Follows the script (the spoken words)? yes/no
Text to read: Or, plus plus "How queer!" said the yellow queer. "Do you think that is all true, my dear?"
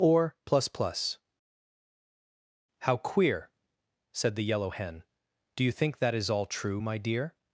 no